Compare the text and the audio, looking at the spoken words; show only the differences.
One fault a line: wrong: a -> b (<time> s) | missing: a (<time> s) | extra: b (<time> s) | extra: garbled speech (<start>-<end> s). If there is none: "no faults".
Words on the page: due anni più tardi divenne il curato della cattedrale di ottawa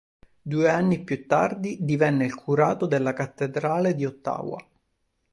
no faults